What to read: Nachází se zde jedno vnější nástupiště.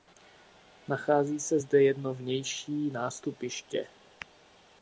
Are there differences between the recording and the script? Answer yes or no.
no